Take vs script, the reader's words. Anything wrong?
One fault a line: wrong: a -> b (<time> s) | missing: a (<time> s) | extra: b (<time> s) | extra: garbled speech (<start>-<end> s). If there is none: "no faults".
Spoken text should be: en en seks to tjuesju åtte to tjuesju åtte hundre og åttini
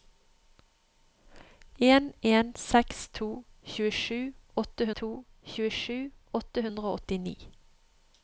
no faults